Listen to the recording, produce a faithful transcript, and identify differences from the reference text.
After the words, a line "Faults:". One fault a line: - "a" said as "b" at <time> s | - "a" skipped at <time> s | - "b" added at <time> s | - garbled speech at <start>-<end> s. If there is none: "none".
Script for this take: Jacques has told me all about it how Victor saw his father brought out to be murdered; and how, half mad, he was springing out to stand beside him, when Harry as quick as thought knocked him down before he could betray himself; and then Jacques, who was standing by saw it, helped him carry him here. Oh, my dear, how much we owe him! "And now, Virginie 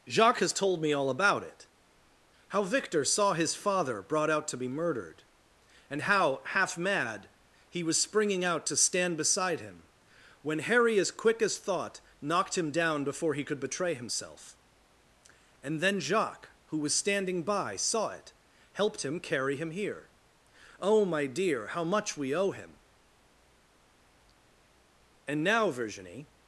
Jacques has told me all about it how Victor saw his father brought out to be murdered; and how, half mad, he was springing out to stand beside him, when Harry as quick as thought knocked him down before he could betray himself; and then Jacques, who was standing by saw it, helped him carry him here. Oh, my dear, how much we owe him! "And now, Virginie
Faults:
none